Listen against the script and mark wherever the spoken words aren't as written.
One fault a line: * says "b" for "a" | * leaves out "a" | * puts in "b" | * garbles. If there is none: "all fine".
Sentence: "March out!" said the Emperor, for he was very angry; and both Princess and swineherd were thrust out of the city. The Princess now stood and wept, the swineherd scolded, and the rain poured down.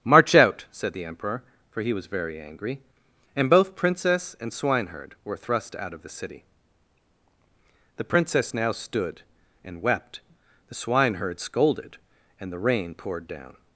all fine